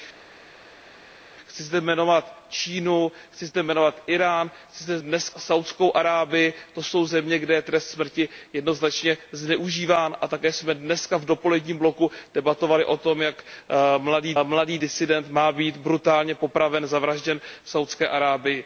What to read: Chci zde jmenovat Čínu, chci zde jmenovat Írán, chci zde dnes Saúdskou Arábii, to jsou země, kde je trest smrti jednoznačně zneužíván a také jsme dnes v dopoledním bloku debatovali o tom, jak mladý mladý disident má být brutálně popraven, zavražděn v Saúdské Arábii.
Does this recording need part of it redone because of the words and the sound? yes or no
no